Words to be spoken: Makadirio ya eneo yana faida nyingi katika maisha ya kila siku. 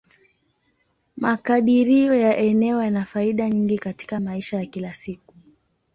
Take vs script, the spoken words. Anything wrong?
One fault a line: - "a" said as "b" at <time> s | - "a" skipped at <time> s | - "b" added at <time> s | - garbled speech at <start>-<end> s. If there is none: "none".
none